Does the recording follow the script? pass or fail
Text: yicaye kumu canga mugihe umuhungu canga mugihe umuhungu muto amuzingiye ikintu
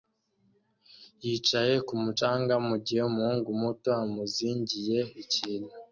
fail